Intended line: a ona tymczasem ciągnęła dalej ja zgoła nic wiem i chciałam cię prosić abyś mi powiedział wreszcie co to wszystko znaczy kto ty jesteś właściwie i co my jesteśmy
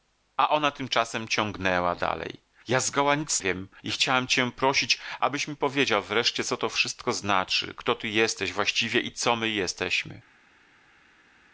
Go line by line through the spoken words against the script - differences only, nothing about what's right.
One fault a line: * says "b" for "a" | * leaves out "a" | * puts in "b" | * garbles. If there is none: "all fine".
all fine